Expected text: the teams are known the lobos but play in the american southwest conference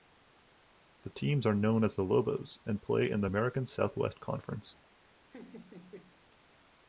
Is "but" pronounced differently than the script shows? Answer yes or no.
yes